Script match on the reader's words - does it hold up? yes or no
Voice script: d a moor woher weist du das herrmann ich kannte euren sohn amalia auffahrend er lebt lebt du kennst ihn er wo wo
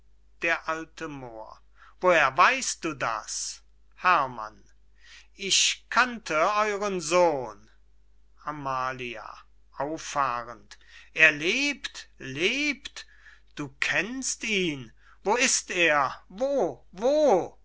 no